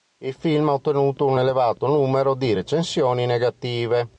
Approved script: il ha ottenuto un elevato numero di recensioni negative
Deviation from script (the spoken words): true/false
true